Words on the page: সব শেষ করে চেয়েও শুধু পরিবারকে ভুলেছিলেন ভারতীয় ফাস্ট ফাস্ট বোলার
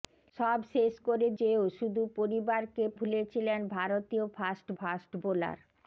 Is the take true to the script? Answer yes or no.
yes